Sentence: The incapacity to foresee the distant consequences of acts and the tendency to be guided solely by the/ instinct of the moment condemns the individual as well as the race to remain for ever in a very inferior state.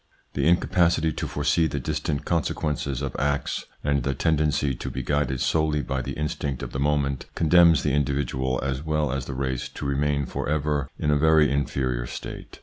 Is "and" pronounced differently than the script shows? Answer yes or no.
no